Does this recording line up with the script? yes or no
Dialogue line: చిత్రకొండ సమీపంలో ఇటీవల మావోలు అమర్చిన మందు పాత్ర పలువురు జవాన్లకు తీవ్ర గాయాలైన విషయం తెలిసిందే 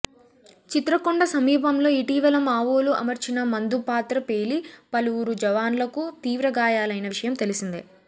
no